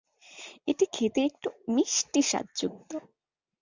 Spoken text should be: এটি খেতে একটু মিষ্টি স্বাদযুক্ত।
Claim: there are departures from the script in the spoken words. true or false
false